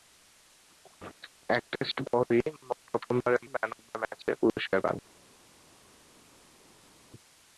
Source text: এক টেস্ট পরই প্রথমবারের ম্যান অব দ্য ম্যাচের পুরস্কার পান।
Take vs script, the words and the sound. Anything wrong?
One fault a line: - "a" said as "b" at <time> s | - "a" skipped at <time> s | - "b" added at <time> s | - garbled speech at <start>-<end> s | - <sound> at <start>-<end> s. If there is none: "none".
none